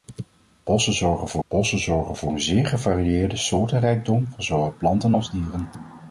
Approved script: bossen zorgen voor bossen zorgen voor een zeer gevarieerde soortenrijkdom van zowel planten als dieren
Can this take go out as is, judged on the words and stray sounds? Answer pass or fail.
pass